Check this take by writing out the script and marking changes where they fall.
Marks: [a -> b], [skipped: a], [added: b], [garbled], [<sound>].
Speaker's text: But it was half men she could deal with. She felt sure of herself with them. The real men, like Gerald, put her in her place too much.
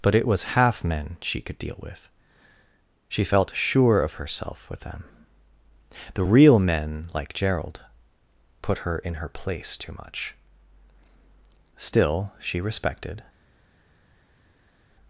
But it was half men she could deal with. She felt sure of herself with them. The real men, like Gerald, put her in her place too much. [added: Still she respected]